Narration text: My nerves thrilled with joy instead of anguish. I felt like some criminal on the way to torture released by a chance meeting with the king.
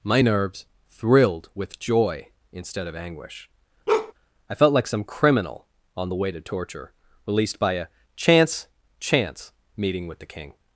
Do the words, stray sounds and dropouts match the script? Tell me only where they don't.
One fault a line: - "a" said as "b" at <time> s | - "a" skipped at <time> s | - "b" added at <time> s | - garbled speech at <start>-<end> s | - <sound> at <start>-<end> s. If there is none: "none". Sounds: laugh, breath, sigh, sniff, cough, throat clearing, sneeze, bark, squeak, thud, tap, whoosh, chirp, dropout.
- bark at 3.9-4.1 s
- "chance" added at 9.0 s